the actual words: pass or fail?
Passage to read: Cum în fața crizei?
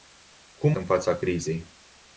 pass